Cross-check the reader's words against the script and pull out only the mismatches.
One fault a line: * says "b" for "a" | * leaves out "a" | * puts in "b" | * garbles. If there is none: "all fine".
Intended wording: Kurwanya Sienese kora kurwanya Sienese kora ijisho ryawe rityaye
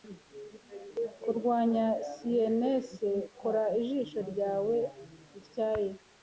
* leaves out "kurwanya Sienese kora"